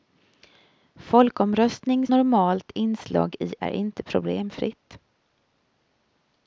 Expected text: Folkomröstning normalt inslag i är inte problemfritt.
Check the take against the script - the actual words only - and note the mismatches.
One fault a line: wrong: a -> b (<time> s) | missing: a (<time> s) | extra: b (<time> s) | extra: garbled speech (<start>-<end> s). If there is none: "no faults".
no faults